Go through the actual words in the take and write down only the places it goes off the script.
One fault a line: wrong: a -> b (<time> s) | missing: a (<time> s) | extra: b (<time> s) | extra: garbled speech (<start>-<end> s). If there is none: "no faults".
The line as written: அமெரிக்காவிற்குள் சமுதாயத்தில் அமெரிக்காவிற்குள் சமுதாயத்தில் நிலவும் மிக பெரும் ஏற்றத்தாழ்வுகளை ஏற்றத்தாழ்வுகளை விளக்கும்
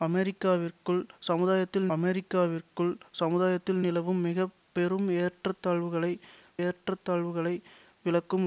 no faults